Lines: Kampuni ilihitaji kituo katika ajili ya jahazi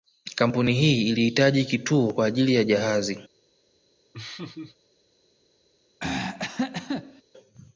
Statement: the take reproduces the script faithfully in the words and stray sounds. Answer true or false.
false